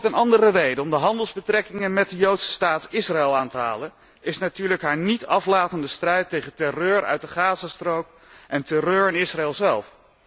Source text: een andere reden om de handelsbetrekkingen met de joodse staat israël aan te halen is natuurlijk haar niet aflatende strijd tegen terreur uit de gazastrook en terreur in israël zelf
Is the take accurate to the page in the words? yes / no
yes